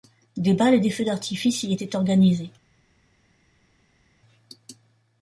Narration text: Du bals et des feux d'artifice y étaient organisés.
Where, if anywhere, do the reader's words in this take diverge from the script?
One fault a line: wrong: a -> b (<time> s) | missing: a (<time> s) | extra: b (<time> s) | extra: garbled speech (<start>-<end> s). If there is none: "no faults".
wrong: Du -> Des (0.3 s)